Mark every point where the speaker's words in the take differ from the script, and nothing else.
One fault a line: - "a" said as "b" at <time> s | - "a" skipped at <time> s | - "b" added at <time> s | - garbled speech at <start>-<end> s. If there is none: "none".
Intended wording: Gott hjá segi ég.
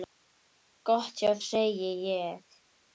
none